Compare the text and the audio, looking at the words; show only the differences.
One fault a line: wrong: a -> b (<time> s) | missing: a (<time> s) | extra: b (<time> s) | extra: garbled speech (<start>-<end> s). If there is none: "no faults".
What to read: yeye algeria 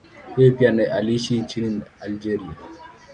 extra: pia aliishi nchini (0.5 s)